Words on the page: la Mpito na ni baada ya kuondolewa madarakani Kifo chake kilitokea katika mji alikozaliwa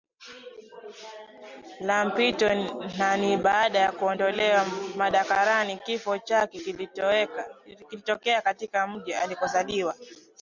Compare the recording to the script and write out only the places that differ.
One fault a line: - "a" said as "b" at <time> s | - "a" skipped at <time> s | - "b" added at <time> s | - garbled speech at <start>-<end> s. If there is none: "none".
none